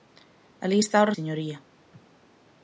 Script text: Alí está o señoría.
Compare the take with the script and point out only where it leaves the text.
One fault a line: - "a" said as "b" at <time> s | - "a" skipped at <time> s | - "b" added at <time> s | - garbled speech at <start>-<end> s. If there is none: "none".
none